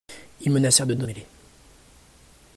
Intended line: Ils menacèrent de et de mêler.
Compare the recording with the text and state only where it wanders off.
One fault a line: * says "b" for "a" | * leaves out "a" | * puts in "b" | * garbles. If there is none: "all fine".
all fine